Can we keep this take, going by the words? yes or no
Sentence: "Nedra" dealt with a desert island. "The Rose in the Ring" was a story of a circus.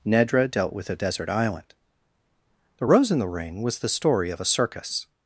no